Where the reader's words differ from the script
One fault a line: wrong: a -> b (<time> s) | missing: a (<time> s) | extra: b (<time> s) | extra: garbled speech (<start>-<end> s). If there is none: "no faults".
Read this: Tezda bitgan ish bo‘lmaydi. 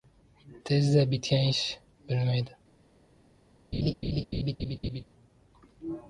no faults